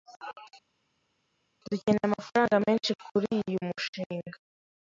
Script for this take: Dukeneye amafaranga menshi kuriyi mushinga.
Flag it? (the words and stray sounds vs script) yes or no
no